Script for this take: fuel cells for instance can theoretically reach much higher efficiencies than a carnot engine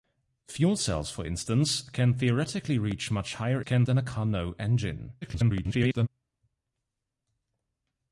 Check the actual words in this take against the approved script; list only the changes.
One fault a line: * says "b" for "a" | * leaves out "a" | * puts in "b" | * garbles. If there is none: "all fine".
* says "can" for "efficiencies"
* garbles